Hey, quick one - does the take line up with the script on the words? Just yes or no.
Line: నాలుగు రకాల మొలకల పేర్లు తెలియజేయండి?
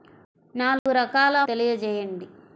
no